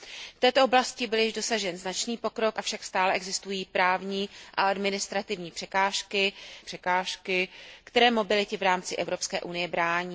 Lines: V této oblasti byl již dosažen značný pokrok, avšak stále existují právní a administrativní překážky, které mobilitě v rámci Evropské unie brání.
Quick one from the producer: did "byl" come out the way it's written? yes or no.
yes